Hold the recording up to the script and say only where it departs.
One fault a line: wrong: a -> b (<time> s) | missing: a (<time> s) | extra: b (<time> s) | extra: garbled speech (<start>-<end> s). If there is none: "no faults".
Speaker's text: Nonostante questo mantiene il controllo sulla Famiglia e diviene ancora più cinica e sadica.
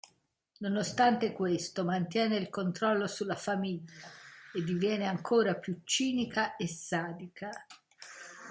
no faults